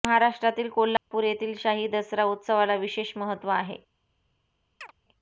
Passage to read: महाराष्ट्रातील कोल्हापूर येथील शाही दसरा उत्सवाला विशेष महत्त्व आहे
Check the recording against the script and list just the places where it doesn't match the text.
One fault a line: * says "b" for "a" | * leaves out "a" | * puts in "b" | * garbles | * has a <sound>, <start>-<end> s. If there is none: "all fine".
* has a dropout, 1.0-1.1 s
* has a chirp, 4.8-4.9 s